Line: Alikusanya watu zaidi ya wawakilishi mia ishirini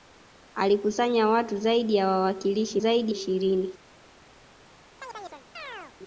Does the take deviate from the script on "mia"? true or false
true